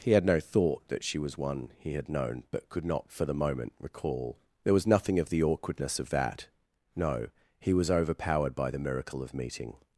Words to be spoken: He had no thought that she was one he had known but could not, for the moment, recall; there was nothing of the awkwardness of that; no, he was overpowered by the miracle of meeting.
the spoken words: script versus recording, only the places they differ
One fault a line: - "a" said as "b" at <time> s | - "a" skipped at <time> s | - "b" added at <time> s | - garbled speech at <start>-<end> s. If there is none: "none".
none